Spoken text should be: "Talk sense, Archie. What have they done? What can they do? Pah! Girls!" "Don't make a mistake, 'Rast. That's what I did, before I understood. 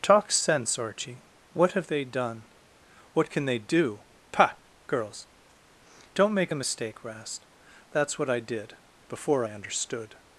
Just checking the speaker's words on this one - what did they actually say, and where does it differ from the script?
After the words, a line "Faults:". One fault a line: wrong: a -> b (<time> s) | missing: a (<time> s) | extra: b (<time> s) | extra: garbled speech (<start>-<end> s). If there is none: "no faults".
"Talk sense, Archie. What have they done? What can they do? Pah! Girls!" "Don't make a mistake, 'Rast. That's what I did, before I understood.
Faults:
no faults